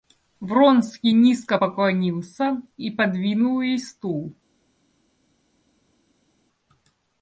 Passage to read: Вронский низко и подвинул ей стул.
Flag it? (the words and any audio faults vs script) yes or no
yes